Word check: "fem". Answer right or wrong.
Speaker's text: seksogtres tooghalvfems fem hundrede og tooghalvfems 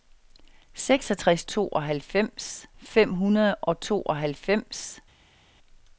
right